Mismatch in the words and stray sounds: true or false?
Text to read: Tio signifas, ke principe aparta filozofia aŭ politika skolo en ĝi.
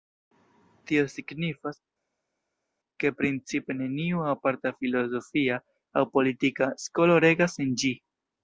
true